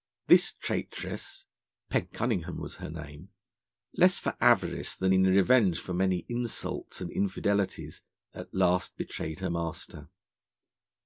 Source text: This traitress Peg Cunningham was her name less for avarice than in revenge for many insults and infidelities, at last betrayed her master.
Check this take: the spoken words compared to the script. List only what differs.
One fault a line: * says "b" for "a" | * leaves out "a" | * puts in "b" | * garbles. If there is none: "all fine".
all fine